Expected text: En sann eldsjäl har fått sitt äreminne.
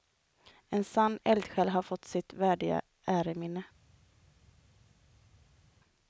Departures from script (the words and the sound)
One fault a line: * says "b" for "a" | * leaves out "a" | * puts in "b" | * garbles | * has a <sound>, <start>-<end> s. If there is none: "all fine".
* puts in "värdiga"